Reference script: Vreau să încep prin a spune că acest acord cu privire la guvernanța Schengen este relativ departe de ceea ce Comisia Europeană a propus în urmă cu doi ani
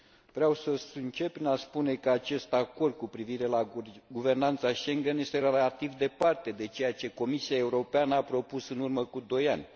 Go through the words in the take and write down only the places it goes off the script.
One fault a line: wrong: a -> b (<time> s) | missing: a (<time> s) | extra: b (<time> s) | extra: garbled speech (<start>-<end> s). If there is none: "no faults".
no faults